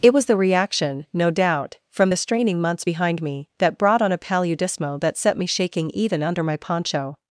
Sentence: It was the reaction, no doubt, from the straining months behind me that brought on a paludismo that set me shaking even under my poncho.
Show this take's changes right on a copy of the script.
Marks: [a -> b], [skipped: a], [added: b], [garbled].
It was the reaction, no doubt, from the straining months behind me that brought on a paludismo that set me shaking even under my poncho.